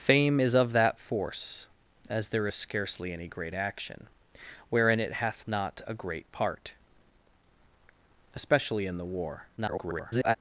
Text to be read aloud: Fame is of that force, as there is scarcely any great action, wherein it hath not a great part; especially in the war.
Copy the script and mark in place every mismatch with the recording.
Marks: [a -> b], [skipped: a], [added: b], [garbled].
Fame is of that force, as there is scarcely any great action, wherein it hath not a great part; especially in the war. [garbled]